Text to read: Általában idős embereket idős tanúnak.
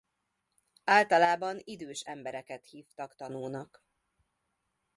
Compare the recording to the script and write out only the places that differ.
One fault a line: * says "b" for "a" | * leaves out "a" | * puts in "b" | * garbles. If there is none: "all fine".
* says "hívtak" for "idős"